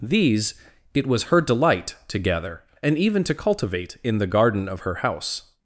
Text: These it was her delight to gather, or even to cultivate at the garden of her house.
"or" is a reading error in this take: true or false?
true